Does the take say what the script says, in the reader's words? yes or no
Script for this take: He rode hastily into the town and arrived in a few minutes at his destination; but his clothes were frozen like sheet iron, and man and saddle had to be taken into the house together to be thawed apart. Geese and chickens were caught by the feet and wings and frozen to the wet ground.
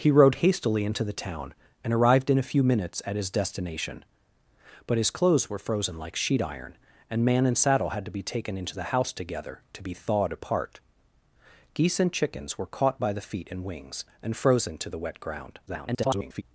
no